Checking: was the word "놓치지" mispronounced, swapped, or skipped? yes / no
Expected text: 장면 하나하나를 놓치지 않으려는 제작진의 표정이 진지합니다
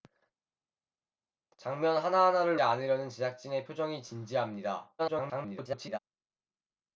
yes